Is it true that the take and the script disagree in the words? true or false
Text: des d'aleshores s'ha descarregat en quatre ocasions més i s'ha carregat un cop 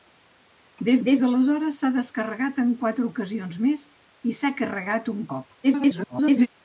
true